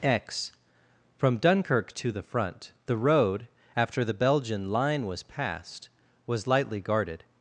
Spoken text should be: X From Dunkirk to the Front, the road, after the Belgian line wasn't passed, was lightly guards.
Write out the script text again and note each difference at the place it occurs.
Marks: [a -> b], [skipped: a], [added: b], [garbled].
X From Dunkirk to the Front, the road, after the Belgian line [wasn't -> was] passed, was lightly [guards. -> guarded]